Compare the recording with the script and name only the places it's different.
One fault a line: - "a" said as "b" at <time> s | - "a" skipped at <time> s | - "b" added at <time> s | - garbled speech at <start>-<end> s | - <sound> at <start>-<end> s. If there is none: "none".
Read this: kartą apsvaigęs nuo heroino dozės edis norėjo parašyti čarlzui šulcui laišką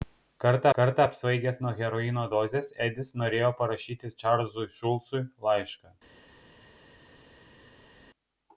- "kartą" added at 0.8 s